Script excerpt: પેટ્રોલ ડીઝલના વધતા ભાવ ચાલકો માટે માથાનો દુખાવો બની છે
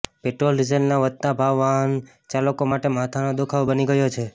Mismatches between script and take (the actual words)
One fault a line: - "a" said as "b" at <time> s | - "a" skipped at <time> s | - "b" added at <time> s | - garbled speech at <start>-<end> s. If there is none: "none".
- "વાહન" added at 1.6 s
- "ગયો" added at 3.9 s